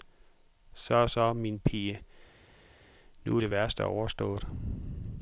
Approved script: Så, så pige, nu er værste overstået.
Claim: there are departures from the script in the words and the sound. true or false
true